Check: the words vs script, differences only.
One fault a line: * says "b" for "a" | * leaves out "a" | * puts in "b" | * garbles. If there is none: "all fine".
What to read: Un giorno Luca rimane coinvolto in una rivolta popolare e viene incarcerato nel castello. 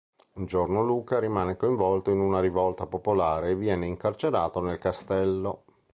all fine